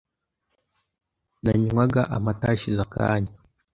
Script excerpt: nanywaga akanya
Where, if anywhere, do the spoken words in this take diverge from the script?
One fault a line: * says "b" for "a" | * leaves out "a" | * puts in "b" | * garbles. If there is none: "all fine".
* puts in "amata hashize"